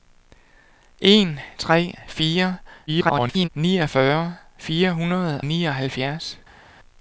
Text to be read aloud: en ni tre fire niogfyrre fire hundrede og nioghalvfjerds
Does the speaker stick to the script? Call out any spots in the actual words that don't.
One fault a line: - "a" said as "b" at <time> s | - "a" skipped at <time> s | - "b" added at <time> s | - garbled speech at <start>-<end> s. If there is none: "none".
- "ni" skipped at 1.4 s
- garbled speech at 2.9-3.5 s
- "og" skipped at 5.4 s